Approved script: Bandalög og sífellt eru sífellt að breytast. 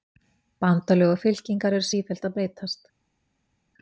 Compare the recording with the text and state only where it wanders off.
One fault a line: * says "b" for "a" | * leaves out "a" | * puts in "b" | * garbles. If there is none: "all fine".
* says "fylkingar" for "sífellt"